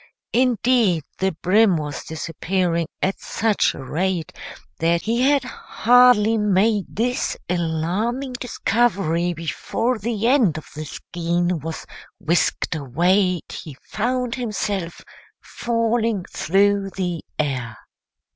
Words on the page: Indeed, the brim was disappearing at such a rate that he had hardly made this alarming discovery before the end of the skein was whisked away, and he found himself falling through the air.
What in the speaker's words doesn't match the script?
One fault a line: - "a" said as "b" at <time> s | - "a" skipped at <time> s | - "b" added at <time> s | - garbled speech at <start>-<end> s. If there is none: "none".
- "and" skipped at 13.4 s